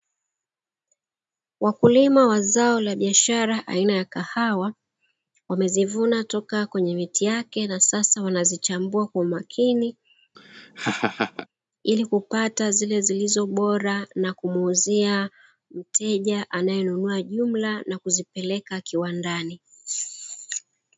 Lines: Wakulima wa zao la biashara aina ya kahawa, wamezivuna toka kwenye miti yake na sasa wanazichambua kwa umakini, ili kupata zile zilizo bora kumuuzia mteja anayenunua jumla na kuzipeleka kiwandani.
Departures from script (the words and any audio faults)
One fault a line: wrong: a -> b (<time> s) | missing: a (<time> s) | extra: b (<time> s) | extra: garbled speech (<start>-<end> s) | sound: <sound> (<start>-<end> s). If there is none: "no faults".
sound: laugh (10.3-11.5 s)
extra: na (14.1 s)